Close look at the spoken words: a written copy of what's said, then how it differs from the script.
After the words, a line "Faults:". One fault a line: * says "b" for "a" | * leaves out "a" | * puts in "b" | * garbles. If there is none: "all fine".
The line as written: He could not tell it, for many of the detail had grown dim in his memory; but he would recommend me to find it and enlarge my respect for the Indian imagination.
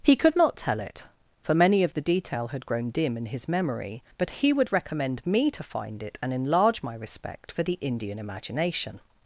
He could not tell it, for many of the detail had grown dim in his memory; but he would recommend me to find it and enlarge my respect for the Indian imagination.
Faults:
all fine